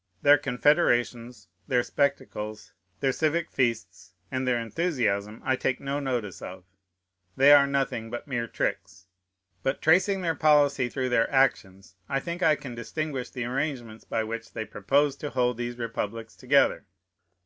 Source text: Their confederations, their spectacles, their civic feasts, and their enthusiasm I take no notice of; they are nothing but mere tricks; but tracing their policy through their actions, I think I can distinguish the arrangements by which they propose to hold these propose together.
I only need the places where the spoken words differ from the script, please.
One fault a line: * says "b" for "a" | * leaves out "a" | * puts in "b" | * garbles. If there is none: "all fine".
* says "republics" for "propose"